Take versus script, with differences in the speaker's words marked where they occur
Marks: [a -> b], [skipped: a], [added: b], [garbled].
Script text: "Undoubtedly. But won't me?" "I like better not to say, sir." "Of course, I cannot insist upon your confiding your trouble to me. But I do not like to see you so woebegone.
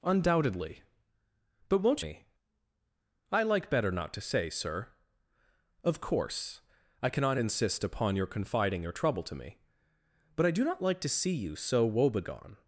"Undoubtedly. But won't me?" "I like better not to say, sir." "Of course, I cannot insist upon your confiding your trouble to me. But I do not like to see you so woebegone.